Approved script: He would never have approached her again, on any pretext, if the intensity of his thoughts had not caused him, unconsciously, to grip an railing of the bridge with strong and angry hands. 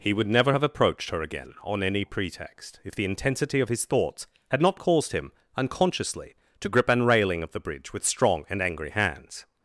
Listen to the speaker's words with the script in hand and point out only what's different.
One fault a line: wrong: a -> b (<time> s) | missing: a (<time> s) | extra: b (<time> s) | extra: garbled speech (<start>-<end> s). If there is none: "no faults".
no faults